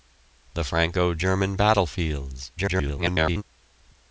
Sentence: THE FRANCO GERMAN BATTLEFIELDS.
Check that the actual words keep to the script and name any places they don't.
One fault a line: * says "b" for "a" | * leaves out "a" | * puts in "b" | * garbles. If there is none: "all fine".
* garbles